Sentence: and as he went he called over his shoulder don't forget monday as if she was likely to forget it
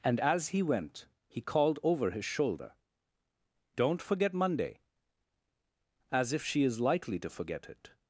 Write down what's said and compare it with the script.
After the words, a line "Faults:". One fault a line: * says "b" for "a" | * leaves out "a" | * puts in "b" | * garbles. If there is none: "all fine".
and as he went he called over his shoulder don't forget monday as if she is likely to forget it
Faults:
* says "is" for "was"